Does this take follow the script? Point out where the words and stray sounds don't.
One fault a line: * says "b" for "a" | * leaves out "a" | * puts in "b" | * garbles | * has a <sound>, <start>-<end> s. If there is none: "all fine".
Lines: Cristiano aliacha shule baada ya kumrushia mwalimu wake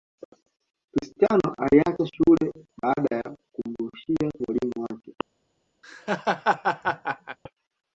* has a laugh, 5.8-7.4 s